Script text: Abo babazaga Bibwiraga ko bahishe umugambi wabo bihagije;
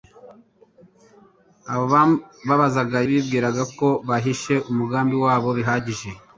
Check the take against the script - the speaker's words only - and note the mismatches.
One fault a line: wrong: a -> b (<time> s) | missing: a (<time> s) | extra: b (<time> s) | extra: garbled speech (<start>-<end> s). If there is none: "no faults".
no faults